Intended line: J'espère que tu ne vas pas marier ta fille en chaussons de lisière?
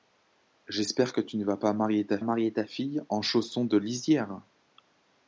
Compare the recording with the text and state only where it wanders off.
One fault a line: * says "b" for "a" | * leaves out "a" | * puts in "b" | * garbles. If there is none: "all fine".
* puts in "marier ta"